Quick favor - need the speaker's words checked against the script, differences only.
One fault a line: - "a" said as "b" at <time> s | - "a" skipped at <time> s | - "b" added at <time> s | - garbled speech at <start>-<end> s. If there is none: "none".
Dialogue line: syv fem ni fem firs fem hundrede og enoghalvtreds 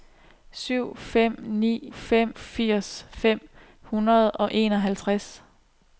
none